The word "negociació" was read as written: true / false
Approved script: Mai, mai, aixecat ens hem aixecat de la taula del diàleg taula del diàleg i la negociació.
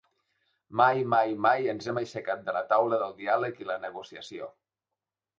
true